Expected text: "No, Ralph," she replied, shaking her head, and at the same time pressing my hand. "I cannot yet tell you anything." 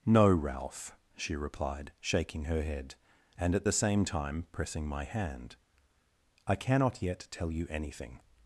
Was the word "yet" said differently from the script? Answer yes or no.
no